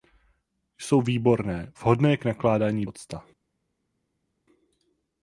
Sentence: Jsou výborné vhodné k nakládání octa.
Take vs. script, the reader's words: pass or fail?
pass